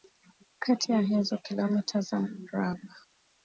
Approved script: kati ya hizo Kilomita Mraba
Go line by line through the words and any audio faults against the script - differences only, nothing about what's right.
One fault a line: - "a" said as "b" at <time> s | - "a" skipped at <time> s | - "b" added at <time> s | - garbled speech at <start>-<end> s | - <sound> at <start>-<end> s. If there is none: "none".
- "za" added at 2.0 s